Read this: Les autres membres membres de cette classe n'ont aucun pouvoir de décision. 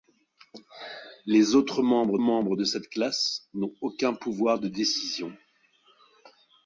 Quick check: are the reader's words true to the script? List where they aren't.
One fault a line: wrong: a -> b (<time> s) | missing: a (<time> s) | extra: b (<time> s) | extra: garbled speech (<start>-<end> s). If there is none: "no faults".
no faults